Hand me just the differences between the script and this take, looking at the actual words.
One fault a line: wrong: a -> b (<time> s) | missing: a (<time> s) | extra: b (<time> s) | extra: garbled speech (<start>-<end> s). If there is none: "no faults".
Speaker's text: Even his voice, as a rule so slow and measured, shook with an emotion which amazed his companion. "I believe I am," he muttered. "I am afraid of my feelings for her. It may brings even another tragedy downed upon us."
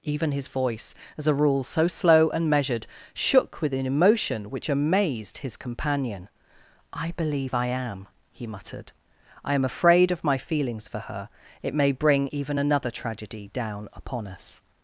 wrong: brings -> bring (11.9 s)
wrong: downed -> down (13.5 s)